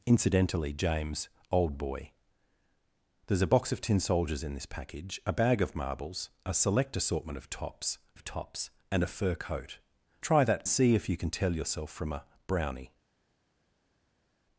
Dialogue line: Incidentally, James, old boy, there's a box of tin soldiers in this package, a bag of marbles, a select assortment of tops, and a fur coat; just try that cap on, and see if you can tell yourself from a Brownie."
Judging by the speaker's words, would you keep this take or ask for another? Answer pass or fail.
fail